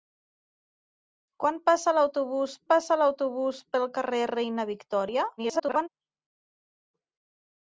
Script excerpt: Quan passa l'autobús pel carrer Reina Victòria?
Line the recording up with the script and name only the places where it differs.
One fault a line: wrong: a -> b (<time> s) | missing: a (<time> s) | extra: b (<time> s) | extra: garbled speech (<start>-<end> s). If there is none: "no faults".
extra: passa l'autobús (2.7 s)
extra: garbled speech (5.4-5.9 s)